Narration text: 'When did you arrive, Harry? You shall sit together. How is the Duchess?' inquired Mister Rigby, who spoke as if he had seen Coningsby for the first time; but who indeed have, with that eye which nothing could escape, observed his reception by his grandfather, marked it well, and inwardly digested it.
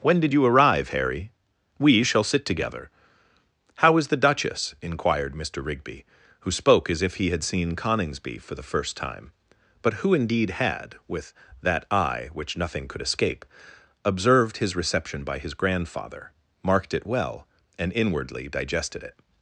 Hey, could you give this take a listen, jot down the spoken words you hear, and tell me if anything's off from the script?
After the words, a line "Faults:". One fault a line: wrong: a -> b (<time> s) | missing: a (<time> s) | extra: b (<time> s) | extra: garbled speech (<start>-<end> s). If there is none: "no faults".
'When did you arrive, Harry? We shall sit together. How is the Duchess?' inquired Mister Rigby, who spoke as if he had seen Coningsby for the first time; but who indeed had, with that eye which nothing could escape, observed his reception by his grandfather, marked it well, and inwardly digested it.
Faults:
wrong: You -> We (1.8 s)
wrong: have -> had (10.5 s)